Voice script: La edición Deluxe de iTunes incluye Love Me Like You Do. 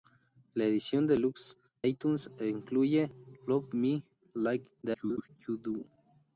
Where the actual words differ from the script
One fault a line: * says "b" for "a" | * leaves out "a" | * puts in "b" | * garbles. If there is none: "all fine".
* leaves out "de"
* garbles